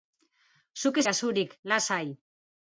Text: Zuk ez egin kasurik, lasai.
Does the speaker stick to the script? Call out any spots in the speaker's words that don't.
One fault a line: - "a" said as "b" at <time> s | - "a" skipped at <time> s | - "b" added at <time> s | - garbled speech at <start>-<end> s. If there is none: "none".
- "egin" skipped at 1.1 s